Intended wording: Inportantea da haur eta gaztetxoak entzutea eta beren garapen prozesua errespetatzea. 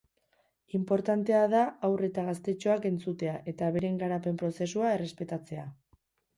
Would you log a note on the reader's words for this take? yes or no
no